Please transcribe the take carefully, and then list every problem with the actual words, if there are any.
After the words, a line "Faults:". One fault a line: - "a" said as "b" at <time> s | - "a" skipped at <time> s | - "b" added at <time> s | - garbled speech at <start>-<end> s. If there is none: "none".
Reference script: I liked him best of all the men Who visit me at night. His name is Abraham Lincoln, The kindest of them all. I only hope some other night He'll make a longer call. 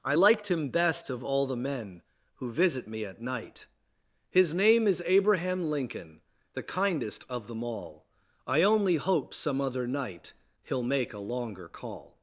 I liked him best of all the men Who visit me at night. His name is Abraham Lincoln, The kindest of them all. I only hope some other night He'll make a longer call.
Faults:
none